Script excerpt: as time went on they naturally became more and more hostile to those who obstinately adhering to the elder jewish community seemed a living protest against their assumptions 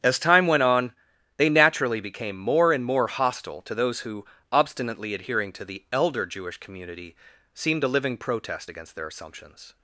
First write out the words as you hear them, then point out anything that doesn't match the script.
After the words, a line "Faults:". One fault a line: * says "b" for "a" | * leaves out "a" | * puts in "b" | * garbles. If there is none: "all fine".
as time went on they naturally became more and more hostile to those who obstinately adhering to the elder jewish community seemed a living protest against their assumptions
Faults:
all fine